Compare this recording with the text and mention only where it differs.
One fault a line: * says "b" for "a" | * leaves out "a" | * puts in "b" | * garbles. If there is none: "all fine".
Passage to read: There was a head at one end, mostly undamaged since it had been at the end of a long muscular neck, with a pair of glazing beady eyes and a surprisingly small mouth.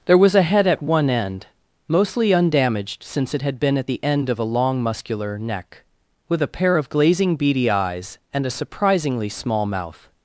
all fine